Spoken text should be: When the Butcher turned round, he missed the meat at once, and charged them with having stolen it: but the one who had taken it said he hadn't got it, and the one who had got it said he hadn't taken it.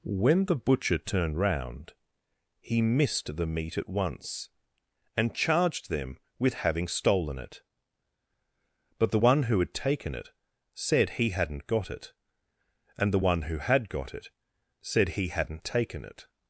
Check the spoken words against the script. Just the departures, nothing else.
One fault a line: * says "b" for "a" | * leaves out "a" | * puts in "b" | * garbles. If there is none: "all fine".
all fine